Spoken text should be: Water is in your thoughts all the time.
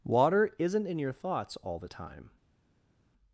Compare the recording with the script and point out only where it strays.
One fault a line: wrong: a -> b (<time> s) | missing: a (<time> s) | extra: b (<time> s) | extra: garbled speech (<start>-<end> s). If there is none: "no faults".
wrong: is -> isn't (0.6 s)